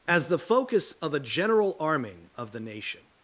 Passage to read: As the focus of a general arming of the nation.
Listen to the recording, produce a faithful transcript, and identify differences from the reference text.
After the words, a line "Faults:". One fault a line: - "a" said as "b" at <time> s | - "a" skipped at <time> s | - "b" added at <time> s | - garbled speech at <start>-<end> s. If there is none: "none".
As the focus of a general arming of the nation.
Faults:
none